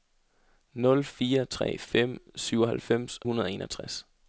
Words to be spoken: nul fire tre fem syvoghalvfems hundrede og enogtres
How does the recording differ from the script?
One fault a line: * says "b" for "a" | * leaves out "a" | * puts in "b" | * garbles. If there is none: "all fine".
all fine